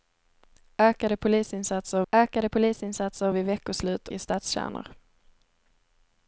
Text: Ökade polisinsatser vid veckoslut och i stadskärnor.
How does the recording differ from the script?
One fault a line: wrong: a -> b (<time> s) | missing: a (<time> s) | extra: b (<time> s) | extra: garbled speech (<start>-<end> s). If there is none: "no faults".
extra: ökade polisinsatser (2.1 s)
missing: och (4.1 s)